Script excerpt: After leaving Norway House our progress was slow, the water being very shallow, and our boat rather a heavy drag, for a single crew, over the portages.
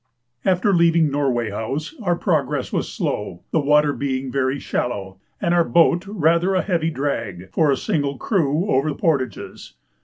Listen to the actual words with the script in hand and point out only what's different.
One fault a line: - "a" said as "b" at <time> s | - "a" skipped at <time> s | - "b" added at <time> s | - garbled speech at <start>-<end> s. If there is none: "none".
none